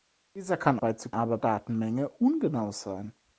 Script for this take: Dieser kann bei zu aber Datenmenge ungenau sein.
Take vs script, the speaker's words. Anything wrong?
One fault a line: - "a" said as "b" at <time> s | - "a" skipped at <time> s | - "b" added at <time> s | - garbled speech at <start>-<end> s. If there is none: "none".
none